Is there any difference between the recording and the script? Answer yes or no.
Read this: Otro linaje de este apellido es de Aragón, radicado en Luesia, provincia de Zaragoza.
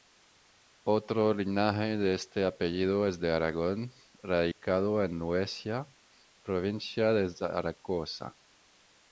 no